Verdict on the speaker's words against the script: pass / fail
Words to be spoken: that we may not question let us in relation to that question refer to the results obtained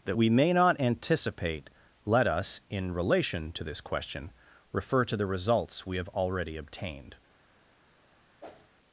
fail